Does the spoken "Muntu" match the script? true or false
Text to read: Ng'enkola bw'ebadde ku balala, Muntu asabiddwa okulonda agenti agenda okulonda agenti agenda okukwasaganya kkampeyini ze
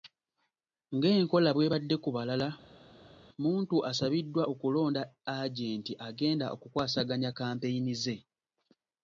true